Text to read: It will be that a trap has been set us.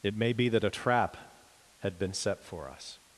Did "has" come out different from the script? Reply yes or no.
yes